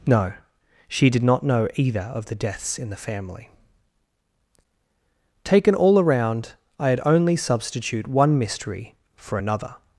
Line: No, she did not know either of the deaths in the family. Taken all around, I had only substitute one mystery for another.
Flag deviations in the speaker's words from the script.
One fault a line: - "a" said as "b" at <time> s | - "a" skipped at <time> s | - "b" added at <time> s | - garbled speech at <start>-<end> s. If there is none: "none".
none